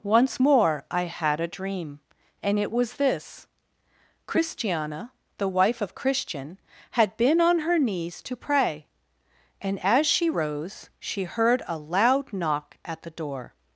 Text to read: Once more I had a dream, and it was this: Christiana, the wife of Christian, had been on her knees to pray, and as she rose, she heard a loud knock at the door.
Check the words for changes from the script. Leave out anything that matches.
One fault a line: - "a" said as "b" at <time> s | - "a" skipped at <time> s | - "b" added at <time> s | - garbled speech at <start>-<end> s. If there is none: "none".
none